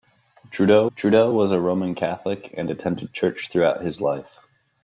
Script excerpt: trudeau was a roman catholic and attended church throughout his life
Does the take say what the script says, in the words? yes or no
no